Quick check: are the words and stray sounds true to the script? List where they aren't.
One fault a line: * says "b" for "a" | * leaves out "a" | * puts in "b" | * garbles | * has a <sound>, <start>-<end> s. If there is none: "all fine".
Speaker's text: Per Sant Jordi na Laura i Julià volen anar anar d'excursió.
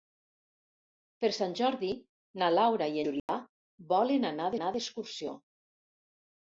* has a dropout, 3.2-3.3 s